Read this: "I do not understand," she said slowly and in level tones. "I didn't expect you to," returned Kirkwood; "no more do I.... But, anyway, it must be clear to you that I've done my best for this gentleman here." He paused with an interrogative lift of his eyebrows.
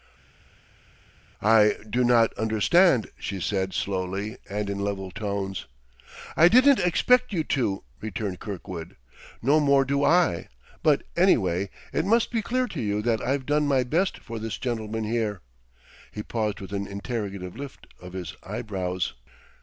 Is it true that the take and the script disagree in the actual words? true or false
false